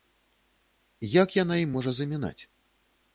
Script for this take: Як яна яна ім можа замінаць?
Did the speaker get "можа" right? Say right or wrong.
right